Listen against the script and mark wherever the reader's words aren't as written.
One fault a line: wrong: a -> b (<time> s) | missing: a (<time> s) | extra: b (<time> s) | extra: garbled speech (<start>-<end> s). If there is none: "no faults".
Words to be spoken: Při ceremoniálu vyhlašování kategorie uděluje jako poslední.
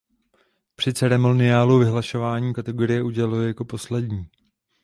no faults